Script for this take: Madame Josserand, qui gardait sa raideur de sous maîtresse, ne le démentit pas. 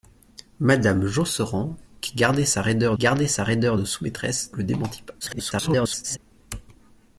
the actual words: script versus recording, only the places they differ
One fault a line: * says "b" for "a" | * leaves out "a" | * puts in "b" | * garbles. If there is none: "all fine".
* puts in "gardait sa raideur"
* leaves out "ne"
* garbles